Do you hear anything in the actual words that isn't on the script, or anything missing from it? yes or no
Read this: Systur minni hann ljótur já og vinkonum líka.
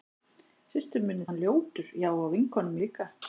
no